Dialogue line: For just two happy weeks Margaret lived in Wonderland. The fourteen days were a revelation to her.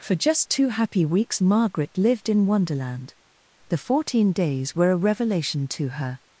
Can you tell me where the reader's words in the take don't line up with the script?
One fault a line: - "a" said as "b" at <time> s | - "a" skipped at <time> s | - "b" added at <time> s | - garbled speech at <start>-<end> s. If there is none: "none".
none